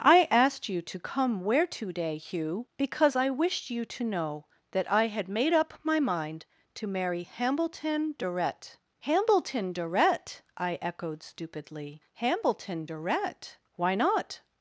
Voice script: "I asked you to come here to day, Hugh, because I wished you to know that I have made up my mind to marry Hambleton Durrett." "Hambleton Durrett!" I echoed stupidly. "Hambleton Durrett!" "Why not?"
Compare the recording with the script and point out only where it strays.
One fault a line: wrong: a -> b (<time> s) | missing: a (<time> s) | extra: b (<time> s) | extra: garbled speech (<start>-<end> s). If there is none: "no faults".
wrong: here -> where (1.4 s)
wrong: have -> had (5.1 s)